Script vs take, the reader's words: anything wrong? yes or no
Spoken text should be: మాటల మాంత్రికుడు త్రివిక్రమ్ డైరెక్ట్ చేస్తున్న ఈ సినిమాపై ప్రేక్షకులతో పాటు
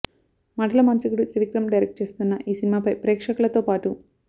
no